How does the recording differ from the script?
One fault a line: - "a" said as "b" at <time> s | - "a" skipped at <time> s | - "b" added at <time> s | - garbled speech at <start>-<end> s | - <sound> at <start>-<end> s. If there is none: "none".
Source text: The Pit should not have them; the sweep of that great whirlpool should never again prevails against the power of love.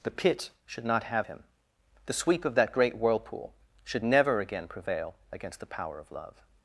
- "them" said as "him" at 1.2 s
- "prevails" said as "prevail" at 4.7 s